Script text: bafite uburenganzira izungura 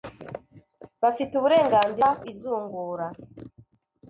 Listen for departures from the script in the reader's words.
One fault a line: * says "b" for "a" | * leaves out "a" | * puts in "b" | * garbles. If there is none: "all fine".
all fine